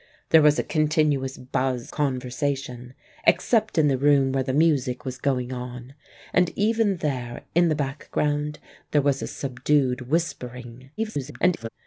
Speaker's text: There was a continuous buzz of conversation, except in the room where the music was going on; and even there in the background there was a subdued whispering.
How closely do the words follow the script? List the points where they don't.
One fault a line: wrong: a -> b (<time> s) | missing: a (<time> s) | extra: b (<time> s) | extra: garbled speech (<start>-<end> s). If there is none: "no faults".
missing: of (1.9 s)
extra: garbled speech (11.0-11.7 s)